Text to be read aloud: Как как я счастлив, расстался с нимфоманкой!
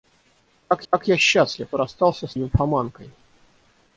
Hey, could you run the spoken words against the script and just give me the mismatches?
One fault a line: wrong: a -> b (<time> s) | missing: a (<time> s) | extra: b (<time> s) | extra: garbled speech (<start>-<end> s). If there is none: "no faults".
no faults